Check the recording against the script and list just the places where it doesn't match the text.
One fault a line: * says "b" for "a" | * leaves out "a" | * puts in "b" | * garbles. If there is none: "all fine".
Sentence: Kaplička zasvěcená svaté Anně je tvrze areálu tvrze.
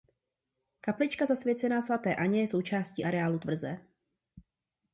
* says "součástí" for "tvrze"